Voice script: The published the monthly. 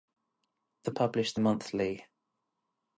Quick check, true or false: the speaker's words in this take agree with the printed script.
true